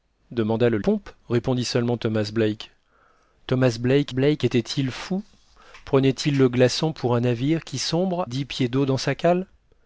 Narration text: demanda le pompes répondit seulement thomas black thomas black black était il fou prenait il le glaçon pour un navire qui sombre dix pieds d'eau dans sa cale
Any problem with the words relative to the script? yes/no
no